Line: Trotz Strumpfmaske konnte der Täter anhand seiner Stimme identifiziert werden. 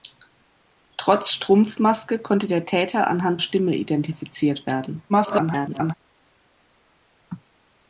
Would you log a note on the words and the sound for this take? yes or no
yes